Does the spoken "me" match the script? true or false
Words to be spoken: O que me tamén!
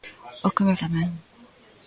true